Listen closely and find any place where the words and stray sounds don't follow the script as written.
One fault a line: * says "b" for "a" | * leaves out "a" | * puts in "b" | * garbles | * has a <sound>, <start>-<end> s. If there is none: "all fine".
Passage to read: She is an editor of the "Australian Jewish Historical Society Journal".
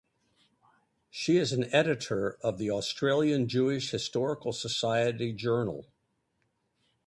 all fine